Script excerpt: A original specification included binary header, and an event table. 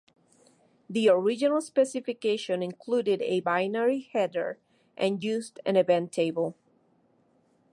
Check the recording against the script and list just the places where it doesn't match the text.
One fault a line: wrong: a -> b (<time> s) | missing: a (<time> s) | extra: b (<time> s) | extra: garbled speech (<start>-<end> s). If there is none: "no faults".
wrong: A -> The (0.9 s)
extra: a (3.2 s)
extra: used (5.2 s)